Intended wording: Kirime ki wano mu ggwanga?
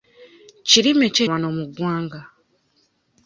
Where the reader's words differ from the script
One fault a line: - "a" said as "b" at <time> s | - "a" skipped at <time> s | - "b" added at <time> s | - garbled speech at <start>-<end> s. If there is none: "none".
none